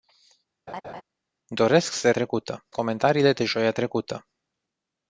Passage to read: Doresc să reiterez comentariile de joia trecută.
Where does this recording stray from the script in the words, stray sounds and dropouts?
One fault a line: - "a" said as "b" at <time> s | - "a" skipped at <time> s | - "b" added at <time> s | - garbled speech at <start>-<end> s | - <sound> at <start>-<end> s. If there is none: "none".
- laugh at 0.7-1.0 s
- "reiterez" said as "trecută" at 2.1 s